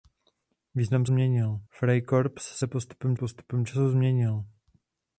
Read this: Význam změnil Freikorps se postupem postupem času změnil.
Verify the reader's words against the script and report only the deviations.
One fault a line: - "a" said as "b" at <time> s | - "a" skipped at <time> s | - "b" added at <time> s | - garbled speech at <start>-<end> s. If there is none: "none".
none